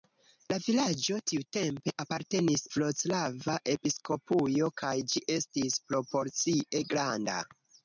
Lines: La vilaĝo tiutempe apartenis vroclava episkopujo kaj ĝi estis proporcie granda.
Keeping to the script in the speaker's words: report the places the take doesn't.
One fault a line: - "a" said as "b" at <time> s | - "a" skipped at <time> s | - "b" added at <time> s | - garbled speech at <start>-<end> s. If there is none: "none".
none